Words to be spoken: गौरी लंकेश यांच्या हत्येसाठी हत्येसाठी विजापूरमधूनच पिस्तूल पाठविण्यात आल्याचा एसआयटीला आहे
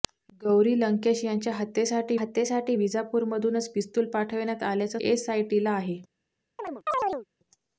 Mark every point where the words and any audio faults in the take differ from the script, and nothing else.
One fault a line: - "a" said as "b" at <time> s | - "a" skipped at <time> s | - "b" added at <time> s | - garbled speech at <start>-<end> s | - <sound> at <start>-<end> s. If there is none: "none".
- chirp at 6.6-7.3 s